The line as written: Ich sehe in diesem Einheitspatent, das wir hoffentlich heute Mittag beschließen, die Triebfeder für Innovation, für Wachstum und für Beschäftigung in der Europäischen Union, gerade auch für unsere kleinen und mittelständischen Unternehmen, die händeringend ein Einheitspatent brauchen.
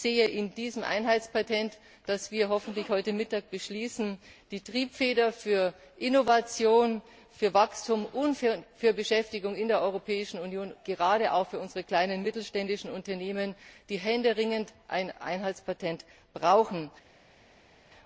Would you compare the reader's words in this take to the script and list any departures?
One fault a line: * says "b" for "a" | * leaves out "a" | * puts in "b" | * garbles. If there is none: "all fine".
all fine